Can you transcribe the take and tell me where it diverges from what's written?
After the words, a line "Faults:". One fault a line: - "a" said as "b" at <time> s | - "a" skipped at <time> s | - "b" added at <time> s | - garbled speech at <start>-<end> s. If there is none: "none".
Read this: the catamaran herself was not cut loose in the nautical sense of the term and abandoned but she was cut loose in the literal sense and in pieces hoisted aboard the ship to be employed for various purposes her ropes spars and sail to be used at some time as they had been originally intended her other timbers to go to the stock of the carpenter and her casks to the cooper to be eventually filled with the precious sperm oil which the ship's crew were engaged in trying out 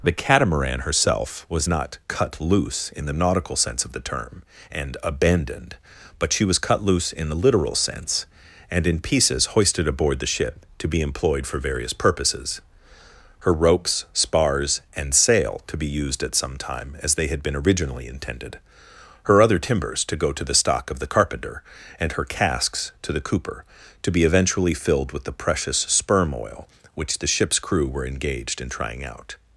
the catamaran herself was not cut loose in the nautical sense of the term and abandoned but she was cut loose in the literal sense and in pieces hoisted aboard the ship to be employed for various purposes her ropes spars and sail to be used at some time as they had been originally intended her other timbers to go to the stock of the carpenter and her casks to the cooper to be eventually filled with the precious sperm oil which the ship's crew were engaged in trying out
Faults:
none